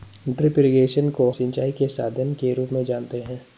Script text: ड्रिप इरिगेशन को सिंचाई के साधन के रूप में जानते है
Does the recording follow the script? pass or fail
pass